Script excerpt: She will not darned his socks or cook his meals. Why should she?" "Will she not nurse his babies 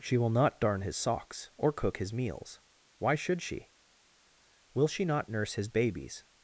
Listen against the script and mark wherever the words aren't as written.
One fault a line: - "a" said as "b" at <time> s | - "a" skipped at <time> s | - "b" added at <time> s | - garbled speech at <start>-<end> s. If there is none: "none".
- "darned" said as "darn" at 0.6 s